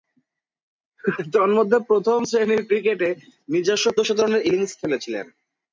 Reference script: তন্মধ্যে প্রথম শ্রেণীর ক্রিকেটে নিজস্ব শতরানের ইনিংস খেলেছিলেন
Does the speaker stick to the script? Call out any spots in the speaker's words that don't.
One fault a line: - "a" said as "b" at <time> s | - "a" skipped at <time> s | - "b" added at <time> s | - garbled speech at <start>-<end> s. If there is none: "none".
none